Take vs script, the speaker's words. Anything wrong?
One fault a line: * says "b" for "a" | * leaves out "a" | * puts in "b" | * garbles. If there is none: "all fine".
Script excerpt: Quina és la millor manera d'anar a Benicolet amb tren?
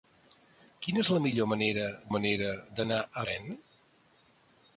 * puts in "manera"
* leaves out "Benicolet amb"